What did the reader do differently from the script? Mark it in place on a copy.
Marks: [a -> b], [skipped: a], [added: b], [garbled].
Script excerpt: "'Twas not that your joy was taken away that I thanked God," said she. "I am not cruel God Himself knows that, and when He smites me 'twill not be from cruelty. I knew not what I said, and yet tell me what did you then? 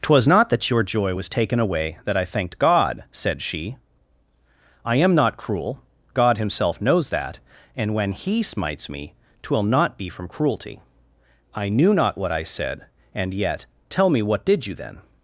"'Twas not that your joy was taken away that I thanked God," said she. "I am not cruel God Himself knows that, and when He smites me 'twill not be from cruelty. I knew not what I said, and yet tell me what did you then?